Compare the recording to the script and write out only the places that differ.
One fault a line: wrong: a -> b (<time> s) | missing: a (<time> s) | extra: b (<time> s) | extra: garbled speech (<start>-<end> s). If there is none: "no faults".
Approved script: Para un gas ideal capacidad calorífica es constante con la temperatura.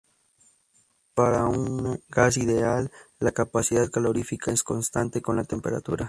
extra: la (3.2 s)